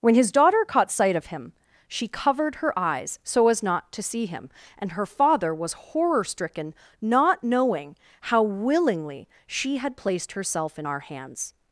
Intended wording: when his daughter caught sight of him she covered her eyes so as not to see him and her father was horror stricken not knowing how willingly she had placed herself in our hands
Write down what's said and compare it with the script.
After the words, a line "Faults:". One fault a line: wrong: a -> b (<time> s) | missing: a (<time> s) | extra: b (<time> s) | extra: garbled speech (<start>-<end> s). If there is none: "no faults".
when his daughter caught sight of him she covered her eyes so as not to see him and her father was horror stricken not knowing how willingly she had placed herself in our hands
Faults:
no faults